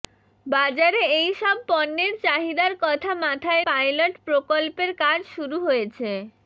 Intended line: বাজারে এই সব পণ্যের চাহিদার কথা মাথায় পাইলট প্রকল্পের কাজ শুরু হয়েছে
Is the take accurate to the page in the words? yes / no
yes